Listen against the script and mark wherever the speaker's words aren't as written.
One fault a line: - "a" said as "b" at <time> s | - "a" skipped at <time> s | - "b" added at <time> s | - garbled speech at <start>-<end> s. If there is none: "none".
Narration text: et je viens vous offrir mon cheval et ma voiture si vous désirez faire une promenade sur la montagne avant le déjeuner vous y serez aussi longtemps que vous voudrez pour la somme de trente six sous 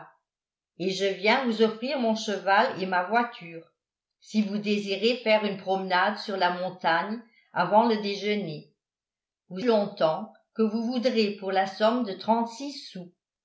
- "y serez aussi" skipped at 9.6 s